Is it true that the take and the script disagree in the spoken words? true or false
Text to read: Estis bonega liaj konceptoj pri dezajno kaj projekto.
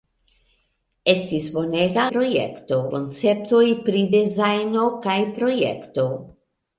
true